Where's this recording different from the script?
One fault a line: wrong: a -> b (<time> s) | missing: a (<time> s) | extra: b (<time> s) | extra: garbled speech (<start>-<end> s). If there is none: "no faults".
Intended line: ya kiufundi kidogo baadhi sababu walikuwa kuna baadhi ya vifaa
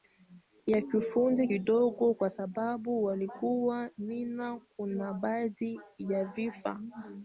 wrong: baadhi -> kwa (2.1 s)
extra: nina (4.0 s)